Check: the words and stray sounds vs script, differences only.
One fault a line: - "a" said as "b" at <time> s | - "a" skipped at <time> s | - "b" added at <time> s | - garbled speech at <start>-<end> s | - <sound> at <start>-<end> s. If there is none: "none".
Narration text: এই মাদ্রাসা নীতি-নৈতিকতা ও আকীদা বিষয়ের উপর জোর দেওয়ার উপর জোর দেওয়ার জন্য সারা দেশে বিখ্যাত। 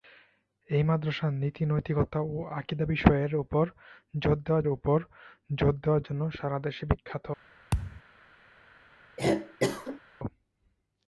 - thud at 7.7-8.0 s
- cough at 9.2-10.0 s